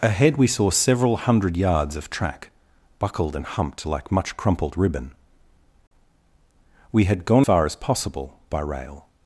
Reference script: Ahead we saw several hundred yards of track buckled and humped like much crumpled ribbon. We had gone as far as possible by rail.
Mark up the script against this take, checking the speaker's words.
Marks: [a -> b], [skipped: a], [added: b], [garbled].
Ahead we saw several hundred yards of track buckled and humped like much crumpled ribbon. We had gone [skipped: as] far as possible by rail.